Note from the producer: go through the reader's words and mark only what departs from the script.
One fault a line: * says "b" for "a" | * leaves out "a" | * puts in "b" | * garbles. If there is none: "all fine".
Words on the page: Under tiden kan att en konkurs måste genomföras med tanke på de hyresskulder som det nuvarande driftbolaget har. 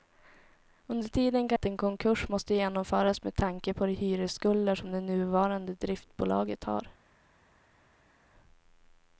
all fine